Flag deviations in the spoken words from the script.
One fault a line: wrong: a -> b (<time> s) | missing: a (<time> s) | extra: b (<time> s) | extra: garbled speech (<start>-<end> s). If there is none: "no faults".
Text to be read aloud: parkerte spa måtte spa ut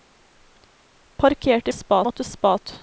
no faults